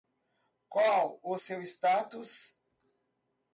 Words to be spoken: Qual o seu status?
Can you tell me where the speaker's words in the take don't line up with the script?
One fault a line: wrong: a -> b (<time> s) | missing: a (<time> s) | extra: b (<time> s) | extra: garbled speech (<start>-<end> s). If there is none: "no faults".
no faults